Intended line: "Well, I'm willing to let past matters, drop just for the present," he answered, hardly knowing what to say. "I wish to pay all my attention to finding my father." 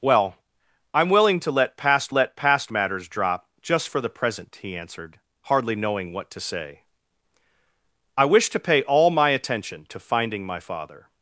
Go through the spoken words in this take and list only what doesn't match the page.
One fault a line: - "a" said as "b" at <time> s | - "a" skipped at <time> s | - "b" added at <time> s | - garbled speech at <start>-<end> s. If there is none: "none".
- "let past" added at 2.1 s